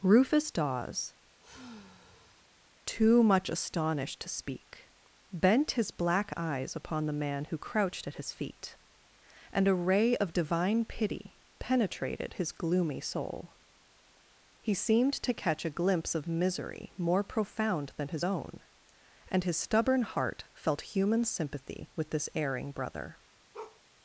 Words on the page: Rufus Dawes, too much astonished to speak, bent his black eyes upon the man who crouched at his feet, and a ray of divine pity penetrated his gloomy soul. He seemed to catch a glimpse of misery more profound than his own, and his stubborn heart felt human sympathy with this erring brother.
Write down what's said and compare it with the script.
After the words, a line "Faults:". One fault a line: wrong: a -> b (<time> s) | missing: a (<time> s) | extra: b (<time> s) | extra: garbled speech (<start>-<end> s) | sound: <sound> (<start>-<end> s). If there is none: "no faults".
Rufus Dawes, too much astonished to speak, bent his black eyes upon the man who crouched at his feet, and a ray of divine pity penetrated his gloomy soul. He seemed to catch a glimpse of misery more profound than his own, and his stubborn heart felt human sympathy with this erring brother.
Faults:
sound: sigh (1.4-2.5 s)
sound: bark (23.5-23.8 s)